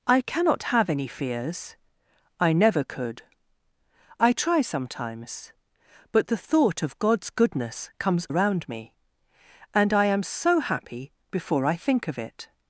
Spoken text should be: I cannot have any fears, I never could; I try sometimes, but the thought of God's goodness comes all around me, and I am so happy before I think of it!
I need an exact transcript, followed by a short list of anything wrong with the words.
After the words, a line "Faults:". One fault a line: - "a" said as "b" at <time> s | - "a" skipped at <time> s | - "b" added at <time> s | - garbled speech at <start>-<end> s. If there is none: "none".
I cannot have any fears, I never could; I try sometimes, but the thought of God's goodness comes around me, and I am so happy before I think of it!
Faults:
- "all" skipped at 8.3 s